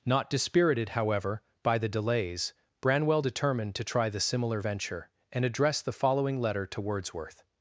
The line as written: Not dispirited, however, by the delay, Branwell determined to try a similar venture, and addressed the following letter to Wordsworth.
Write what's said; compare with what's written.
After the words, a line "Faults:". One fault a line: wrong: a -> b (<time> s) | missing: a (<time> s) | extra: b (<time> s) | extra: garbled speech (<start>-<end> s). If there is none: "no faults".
Not dispirited, however, by the delays, Branwell determined to try the similar venture, and addressed the following letter to Wordsworth.
Faults:
wrong: delay -> delays (1.9 s)
wrong: a -> the (4.1 s)